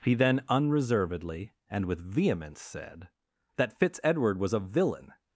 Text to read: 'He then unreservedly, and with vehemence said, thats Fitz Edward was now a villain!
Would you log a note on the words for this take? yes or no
yes